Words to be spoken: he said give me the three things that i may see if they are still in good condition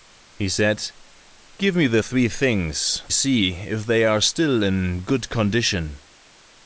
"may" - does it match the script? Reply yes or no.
no